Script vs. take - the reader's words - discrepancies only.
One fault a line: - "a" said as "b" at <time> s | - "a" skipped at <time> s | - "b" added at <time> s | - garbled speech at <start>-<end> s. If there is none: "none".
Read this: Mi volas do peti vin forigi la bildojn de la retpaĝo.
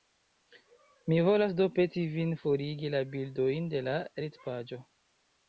none